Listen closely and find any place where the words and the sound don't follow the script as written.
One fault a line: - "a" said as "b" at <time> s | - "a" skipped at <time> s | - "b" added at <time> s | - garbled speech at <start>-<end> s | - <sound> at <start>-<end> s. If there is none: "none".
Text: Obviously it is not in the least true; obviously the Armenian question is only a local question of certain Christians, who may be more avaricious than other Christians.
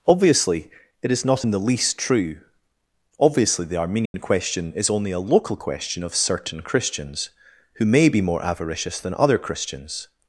- dropout at 4.1-4.1 s